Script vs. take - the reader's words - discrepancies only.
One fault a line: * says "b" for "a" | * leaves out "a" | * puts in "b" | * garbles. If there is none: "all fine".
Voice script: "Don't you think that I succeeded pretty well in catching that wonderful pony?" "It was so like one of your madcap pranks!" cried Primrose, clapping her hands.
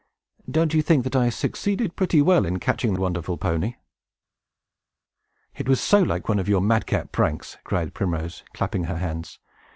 * leaves out "that"